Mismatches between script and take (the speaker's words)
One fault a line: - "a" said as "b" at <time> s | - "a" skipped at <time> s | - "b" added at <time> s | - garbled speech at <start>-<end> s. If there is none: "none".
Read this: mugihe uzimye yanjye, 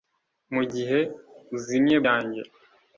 none